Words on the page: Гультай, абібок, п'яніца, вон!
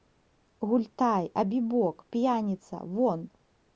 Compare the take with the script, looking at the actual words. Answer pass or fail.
pass